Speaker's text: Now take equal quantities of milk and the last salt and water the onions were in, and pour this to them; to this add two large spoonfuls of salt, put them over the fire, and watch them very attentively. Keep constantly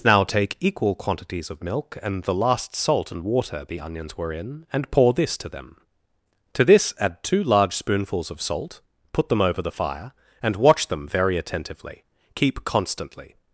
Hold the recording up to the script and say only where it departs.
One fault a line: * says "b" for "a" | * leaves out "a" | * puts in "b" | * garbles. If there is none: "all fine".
all fine